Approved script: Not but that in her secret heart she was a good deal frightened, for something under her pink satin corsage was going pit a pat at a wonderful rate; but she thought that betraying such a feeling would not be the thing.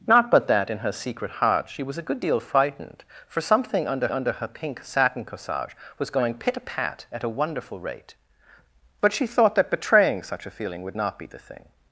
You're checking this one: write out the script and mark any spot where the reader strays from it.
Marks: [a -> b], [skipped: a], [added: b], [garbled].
Not but that in her secret heart she was a good deal frightened, for something under [added: under] her pink satin corsage was going pit a pat at a wonderful rate; but she thought that betraying such a feeling would not be the thing.